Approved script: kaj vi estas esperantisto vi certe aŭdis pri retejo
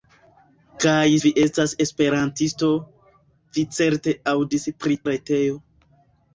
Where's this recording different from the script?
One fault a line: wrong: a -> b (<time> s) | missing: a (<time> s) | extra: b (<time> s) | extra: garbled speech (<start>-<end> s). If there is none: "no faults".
no faults